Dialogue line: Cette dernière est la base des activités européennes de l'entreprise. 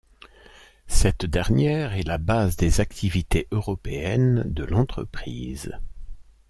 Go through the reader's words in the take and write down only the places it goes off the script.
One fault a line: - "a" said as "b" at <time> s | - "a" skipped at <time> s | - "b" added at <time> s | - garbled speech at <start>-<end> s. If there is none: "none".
none